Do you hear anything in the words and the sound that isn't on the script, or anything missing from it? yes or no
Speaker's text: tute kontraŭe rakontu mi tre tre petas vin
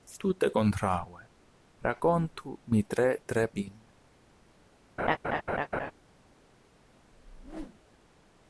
yes